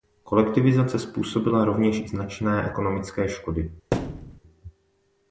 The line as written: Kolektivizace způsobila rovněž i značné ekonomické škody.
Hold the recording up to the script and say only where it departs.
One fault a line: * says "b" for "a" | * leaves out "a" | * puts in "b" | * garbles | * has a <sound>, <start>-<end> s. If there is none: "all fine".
* has a thud, 3.9-4.4 s